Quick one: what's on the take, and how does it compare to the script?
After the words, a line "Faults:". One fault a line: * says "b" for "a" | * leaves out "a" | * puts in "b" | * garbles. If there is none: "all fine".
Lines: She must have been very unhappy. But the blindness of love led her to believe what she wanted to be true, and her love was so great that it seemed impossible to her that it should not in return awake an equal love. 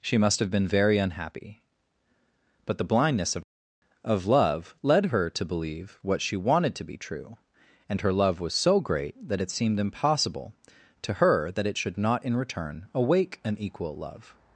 She must have been very unhappy. But the blindness of of love led her to believe what she wanted to be true, and her love was so great that it seemed impossible to her that it should not in return awake an equal love.
Faults:
* puts in "of"